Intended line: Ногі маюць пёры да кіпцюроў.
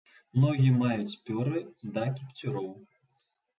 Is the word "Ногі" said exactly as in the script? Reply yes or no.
yes